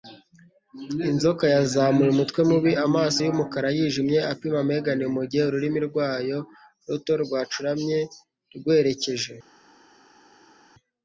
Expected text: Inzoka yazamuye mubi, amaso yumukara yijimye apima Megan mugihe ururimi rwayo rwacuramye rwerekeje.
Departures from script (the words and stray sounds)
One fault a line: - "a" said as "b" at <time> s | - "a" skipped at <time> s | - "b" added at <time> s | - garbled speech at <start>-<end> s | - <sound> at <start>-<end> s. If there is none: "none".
- "umutwe" added at 2.1 s
- "ruto" added at 6.9 s